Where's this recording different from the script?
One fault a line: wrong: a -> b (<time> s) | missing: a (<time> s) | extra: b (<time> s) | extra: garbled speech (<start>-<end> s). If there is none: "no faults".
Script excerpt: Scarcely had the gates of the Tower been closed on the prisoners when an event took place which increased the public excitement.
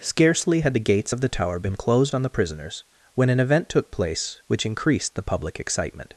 no faults